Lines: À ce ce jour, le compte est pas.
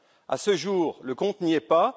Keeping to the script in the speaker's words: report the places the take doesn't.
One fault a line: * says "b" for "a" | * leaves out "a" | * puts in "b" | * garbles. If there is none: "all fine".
* leaves out "ce"
* puts in "n'y"